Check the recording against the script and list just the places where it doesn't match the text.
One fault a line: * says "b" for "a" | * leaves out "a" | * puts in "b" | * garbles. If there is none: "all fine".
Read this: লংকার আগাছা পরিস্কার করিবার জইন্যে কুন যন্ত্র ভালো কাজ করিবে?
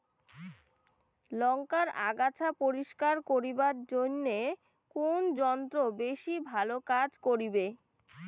* puts in "বেশি"